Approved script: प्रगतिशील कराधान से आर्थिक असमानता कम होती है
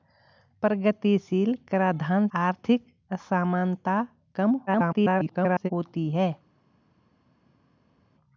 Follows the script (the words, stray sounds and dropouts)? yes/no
no